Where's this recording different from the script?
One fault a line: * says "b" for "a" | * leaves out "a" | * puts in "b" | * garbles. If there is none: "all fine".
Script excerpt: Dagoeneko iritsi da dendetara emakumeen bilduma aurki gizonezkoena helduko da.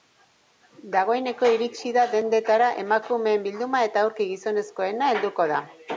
* puts in "eta"